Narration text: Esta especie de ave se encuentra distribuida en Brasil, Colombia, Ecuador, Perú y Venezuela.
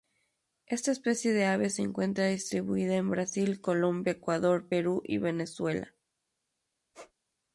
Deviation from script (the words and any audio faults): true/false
true